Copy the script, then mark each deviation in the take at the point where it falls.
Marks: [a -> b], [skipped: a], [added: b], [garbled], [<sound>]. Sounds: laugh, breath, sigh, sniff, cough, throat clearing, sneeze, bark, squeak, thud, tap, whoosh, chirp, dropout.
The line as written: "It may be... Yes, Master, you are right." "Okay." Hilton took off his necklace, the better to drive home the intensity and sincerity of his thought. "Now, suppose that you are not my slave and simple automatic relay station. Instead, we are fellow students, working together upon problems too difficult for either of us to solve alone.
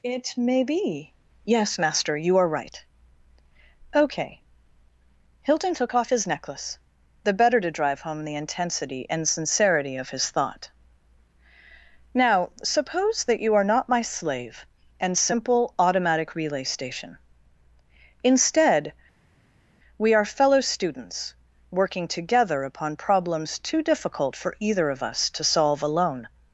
"It may be... Yes, Master, you are right." "Okay." Hilton took off his necklace, the better to drive home the intensity and sincerity of his thought. "Now, suppose that you are not my slave and simple automatic relay station. Instead, we are fellow students, working together upon problems too difficult for either of us to solve alone.